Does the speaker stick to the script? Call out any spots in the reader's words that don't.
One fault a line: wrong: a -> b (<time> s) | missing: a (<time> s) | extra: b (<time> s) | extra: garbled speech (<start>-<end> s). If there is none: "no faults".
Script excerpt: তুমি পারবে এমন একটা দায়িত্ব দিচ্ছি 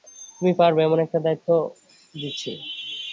no faults